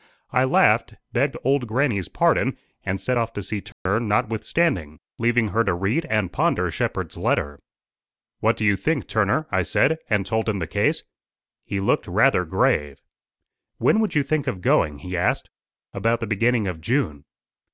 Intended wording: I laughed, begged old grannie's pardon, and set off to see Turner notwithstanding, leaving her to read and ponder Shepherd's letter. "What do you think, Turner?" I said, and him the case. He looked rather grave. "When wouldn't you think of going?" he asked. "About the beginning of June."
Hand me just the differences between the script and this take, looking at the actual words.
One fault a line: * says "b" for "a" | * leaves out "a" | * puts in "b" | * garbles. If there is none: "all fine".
* puts in "told"
* says "would" for "wouldn't"